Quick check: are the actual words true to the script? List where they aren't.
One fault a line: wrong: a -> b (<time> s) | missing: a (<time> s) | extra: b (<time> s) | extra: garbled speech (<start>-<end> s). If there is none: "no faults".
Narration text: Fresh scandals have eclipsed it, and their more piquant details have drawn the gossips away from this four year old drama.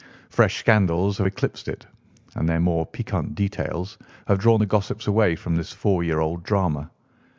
no faults